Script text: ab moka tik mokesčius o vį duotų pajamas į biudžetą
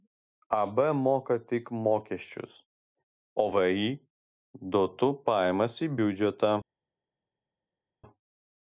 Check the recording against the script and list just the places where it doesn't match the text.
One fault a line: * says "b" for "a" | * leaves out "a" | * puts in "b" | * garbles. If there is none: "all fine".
all fine